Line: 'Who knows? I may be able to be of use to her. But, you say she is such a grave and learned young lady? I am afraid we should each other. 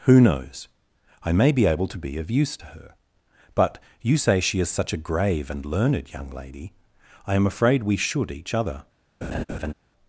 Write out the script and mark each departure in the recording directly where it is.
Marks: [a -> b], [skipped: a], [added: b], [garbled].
'Who knows? I may be able to be of use to her. But, you say she is such a grave and learned young lady? I am afraid we should each other.